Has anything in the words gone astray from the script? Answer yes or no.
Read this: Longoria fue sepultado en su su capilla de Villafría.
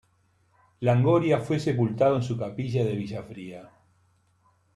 yes